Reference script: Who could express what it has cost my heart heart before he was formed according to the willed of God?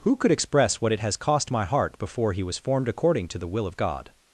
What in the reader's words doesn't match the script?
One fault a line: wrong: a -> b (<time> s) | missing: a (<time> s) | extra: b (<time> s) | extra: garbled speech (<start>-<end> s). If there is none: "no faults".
missing: heart (2.0 s)
wrong: willed -> will (3.5 s)